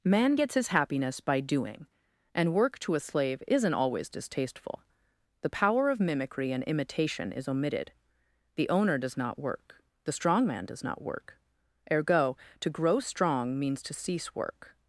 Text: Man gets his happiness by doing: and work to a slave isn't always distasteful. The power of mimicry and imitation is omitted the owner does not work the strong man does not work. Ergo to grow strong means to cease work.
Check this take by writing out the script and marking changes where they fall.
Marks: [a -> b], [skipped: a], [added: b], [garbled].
Man gets his happiness by doing: and work to a slave isn't always distasteful. The power of mimicry and imitation is omitted the owner does not work the strong man does not work. Ergo to grow strong means to cease work.